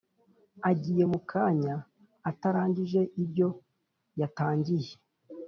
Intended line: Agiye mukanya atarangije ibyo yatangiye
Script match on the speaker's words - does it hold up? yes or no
yes